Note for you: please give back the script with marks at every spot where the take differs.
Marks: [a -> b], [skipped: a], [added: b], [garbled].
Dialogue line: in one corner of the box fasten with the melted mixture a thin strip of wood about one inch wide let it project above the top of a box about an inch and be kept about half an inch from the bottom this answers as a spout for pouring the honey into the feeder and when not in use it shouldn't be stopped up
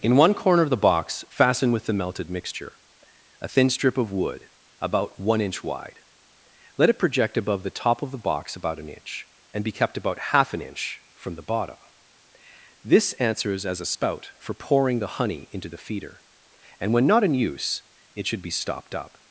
in one corner of the box fasten with the melted mixture a thin strip of wood about one inch wide let it project above the top of [a -> the] box about an inch and be kept about half an inch from the bottom this answers as a spout for pouring the honey into the feeder and when not in use it [shouldn't -> should] be stopped up